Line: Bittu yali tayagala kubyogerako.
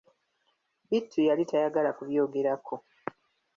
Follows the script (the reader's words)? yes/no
yes